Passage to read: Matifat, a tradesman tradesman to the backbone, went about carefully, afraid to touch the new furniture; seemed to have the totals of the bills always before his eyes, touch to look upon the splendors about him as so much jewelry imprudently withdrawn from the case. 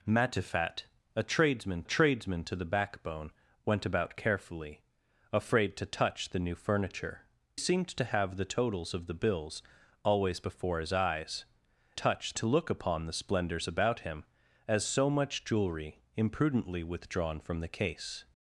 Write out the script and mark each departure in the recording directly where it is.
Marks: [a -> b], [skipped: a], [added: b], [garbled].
Matifat, a tradesman tradesman to the backbone, went about carefully, afraid to touch the new furniture; seemed to have the totals of the bills always before his eyes, touch to look upon the splendors about him as so much jewelry imprudently withdrawn from the case.